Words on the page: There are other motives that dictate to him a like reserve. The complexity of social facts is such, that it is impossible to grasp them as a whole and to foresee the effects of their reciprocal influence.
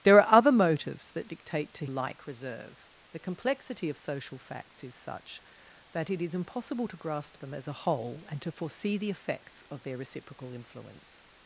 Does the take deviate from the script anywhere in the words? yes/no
yes